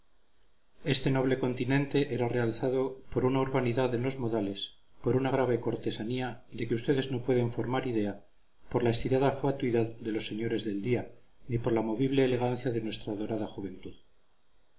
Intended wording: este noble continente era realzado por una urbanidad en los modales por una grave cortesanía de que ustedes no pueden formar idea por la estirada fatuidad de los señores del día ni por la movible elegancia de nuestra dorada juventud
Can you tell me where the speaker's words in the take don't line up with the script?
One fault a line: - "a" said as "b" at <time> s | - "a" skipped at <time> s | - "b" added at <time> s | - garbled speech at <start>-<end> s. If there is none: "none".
none